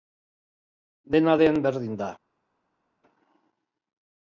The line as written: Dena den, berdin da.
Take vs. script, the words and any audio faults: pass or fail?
pass